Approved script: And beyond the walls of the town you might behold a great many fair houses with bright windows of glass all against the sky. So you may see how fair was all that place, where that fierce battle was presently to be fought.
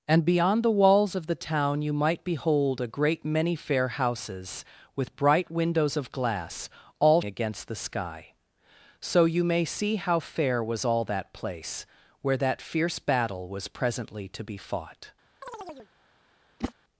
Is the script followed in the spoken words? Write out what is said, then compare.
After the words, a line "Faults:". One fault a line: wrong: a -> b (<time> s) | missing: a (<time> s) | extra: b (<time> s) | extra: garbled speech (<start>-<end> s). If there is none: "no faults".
And beyond the walls of the town you might behold a great many fair houses with bright windows of glass all against the sky. So you may see how fair was all that place, where that fierce battle was presently to be fought.
Faults:
no faults